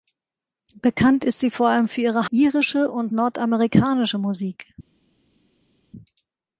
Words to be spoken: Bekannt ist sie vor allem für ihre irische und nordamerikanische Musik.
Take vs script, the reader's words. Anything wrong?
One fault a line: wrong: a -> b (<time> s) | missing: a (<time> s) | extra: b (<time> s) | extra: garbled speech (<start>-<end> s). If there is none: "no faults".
no faults